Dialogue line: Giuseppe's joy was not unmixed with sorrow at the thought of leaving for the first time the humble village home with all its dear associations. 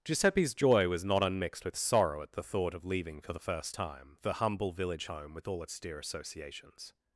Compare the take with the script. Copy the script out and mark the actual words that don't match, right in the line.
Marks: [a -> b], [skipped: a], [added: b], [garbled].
Giuseppe's joy was not unmixed with sorrow at the thought of leaving for the first time the humble village home with all its dear associations.